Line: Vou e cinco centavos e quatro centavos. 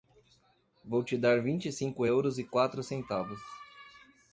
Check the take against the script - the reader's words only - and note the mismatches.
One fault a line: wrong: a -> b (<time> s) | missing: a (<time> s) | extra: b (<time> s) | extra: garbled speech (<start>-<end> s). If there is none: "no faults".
extra: te dar vinte (1.0 s)
wrong: centavos -> euros (2.0 s)